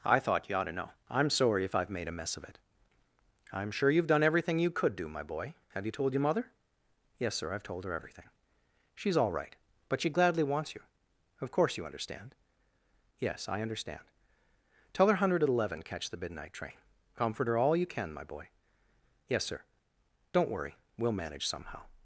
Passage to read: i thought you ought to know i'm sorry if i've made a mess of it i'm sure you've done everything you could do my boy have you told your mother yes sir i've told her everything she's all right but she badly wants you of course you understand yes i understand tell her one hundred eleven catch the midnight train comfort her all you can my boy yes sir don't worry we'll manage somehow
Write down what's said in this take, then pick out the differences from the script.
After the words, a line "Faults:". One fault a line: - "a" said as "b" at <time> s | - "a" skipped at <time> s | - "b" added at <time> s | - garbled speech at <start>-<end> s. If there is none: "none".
i thought you ought to know i'm sorry if i've made a mess of it i'm sure you've done everything you could do my boy have you told your mother yes sir i've told her everything she's all right but she gladly wants you of course you understand yes i understand tell her one hundred eleven catch the midnight train comfort her all you can my boy yes sir don't worry we'll manage somehow
Faults:
- "badly" said as "gladly" at 10.1 s